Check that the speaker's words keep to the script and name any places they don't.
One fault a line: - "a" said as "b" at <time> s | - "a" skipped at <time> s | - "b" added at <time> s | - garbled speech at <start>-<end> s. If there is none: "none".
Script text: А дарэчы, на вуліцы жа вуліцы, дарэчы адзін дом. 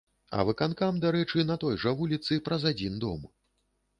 - "выканкам" added at 0.5 s
- "вуліцы" said as "той" at 1.6 s
- "дарэчы" said as "праз" at 2.5 s